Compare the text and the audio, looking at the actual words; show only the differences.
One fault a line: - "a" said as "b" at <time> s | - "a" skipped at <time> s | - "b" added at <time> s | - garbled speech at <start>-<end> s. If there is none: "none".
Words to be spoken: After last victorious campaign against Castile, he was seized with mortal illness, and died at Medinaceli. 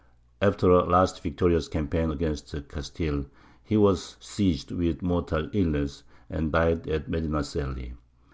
- "a" added at 0.7 s